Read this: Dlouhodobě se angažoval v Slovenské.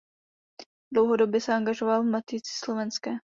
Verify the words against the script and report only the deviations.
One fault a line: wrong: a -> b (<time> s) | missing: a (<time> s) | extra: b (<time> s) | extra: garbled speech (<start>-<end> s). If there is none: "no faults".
extra: Matici (2.0 s)